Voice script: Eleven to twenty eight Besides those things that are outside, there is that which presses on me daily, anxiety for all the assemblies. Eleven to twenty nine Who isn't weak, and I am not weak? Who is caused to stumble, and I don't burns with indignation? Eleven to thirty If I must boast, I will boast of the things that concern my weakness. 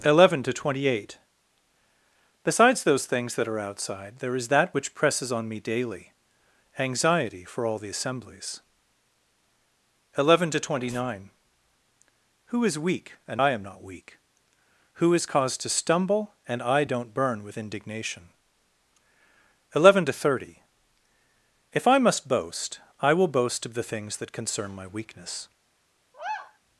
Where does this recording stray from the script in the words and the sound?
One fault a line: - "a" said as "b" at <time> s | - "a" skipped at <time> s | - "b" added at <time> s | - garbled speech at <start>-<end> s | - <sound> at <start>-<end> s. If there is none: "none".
- "isn't" said as "is" at 12.7 s
- "burns" said as "burn" at 17.1 s
- sigh at 26.1-26.6 s